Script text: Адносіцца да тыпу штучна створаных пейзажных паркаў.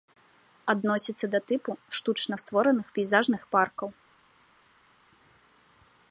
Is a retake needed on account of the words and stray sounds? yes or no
no